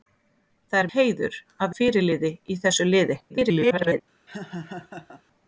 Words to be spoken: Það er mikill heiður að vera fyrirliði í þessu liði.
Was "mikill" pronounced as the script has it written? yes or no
no